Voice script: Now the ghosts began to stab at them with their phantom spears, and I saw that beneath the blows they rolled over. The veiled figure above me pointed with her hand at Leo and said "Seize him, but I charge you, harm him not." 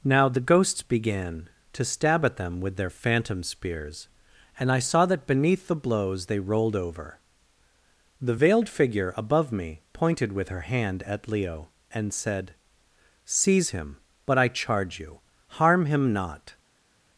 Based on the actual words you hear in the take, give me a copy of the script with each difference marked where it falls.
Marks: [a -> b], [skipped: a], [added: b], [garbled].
Now the ghosts began to stab at them with their phantom spears, and I saw that beneath the blows they rolled over. The veiled figure above me pointed with her hand at Leo and said "Seize him, but I charge you, harm him not."